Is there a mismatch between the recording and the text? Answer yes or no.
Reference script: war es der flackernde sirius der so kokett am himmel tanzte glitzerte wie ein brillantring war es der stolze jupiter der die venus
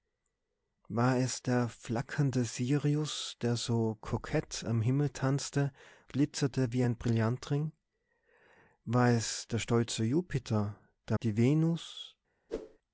no